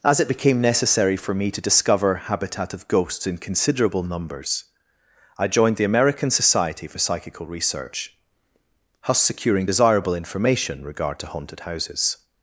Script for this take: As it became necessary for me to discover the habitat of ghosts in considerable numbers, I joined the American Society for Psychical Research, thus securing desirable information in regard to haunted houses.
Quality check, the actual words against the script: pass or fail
fail